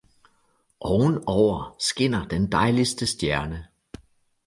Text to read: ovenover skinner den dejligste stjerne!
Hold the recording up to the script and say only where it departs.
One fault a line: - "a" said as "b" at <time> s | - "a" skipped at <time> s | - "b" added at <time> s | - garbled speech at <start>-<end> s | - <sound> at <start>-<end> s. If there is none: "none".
none